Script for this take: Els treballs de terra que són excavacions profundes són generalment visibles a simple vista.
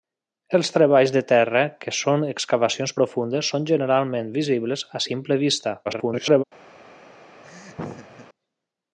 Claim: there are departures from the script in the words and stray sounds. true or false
true